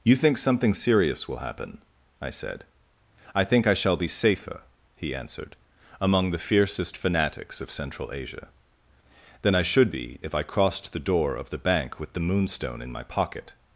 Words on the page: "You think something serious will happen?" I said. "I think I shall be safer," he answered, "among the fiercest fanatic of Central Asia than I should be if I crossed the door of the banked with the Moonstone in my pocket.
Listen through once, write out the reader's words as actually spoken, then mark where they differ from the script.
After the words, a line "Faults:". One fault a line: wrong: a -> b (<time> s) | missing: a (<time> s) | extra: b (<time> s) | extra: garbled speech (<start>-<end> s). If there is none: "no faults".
"You think something serious will happen?" I said. "I think I shall be safer," he answered, "among the fiercest fanatics of Central Asia than I should be if I crossed the door of the bank with the Moonstone in my pocket.
Faults:
wrong: fanatic -> fanatics (7.0 s)
wrong: banked -> bank (11.6 s)